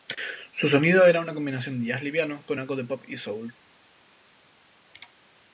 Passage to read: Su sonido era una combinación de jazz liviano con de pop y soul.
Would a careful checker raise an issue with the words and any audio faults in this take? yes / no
yes